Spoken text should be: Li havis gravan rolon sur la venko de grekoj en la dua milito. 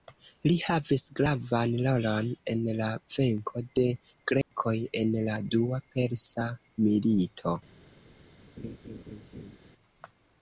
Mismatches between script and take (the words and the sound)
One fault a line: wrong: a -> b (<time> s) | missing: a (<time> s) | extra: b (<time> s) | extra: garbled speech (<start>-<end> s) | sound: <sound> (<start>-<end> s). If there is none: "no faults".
wrong: sur -> en (2.5 s)
sound: dropout (4.4-4.5 s)
extra: persa (6.0 s)
sound: laugh (8.6-9.6 s)